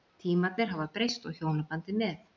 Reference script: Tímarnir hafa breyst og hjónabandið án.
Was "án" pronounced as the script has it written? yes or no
no